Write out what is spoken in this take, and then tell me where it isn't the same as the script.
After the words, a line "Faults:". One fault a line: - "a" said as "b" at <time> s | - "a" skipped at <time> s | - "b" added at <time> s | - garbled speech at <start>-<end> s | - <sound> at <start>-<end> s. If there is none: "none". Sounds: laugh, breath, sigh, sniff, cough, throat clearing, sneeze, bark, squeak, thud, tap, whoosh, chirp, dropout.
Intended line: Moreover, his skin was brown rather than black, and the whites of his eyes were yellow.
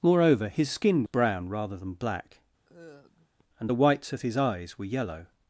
Moreover, his skin brown rather than black, and the whites of his eyes were yellow.
Faults:
- "was" skipped at 1.0 s
- sigh at 2.6-3.4 s